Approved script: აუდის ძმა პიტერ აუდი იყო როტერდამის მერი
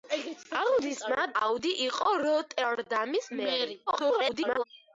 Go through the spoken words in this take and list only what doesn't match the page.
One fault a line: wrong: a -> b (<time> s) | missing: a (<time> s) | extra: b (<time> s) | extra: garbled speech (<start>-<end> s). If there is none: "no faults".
missing: პიტერ (1.2 s)
extra: garbled speech (3.9-4.6 s)